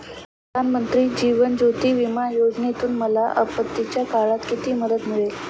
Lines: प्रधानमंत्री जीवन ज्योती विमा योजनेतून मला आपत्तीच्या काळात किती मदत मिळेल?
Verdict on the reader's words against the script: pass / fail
pass